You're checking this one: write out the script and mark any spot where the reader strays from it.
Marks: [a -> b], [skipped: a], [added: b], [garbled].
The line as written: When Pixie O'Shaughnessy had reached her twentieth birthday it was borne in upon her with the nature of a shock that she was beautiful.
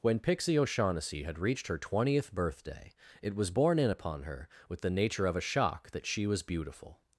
When Pixie O'Shaughnessy had reached her twentieth birthday it was borne in upon her with the nature of a shock that she was beautiful.